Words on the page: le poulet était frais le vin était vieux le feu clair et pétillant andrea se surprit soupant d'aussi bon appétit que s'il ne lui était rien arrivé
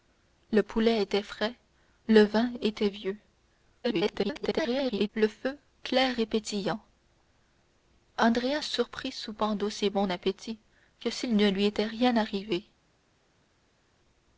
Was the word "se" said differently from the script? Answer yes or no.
yes